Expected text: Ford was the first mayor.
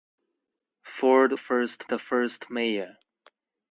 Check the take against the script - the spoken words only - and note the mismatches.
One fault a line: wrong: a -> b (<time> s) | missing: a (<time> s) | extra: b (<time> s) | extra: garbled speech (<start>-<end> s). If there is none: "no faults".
wrong: was -> first (1.4 s)